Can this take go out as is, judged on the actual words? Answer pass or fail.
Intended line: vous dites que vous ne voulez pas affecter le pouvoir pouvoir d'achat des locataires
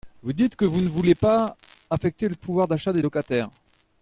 fail